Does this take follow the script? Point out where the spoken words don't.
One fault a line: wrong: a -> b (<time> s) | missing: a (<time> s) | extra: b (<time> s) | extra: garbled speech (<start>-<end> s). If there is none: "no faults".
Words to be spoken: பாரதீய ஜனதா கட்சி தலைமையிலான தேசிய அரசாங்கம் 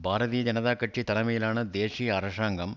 no faults